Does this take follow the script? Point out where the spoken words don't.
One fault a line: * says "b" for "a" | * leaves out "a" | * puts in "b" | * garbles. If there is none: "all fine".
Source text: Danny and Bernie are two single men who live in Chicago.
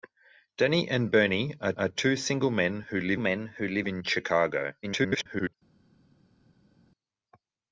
* puts in "are"
* puts in "men who live"
* garbles